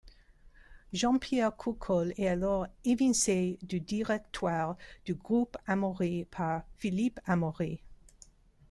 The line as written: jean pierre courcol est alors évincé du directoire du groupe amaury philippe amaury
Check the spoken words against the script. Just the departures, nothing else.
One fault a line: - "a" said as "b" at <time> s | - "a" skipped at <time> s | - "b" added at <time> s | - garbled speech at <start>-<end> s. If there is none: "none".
- "par" added at 6.2 s